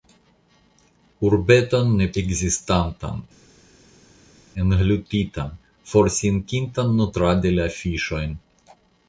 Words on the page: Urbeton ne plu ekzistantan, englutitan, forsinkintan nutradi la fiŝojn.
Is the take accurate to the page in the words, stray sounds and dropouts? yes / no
no